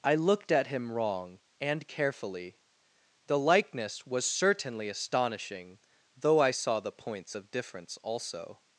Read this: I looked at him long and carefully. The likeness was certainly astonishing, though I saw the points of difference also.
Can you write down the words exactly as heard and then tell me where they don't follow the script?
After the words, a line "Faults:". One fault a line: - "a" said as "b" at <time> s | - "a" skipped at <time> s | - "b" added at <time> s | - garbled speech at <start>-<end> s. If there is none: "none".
I looked at him wrong and carefully. The likeness was certainly astonishing, though I saw the points of difference also.
Faults:
- "long" said as "wrong" at 0.9 s